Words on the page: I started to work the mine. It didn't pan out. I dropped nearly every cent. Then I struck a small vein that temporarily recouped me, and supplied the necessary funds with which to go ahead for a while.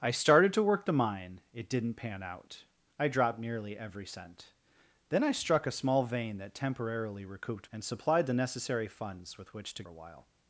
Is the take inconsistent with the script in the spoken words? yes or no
yes